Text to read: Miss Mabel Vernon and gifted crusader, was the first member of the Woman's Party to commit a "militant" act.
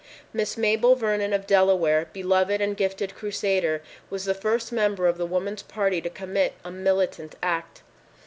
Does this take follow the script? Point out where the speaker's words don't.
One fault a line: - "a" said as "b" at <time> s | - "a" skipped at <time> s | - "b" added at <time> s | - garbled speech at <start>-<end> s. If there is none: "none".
- "of Delaware beloved" added at 1.3 s